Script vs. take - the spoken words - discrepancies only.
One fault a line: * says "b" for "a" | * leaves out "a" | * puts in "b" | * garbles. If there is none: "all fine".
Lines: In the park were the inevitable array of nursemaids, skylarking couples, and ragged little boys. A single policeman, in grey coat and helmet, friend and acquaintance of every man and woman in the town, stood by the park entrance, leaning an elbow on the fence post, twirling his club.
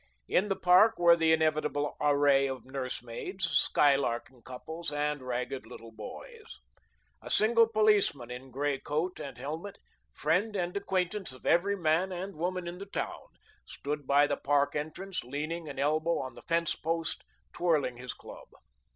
all fine